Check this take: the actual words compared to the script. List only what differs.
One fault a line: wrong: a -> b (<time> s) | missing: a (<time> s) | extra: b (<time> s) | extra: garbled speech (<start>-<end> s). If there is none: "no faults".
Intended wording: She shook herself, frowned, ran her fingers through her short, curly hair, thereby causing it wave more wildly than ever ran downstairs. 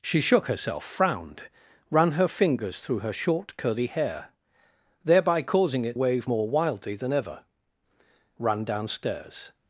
no faults